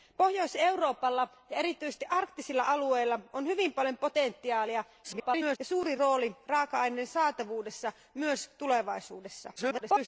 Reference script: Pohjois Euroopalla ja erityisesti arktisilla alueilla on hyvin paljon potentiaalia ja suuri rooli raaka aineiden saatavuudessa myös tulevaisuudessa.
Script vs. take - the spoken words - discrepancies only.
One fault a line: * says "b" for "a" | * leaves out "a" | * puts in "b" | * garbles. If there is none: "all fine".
* garbles
* garbles